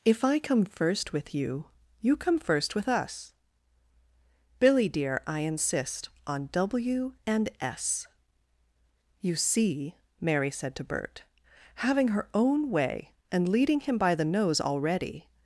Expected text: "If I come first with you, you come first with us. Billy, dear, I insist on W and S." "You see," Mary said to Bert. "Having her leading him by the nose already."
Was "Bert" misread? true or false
false